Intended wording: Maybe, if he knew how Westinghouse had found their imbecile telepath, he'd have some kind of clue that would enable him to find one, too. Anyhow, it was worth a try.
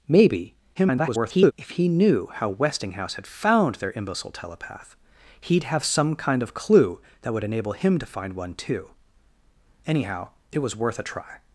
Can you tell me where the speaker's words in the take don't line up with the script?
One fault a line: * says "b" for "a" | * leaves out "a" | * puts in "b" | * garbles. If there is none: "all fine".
* garbles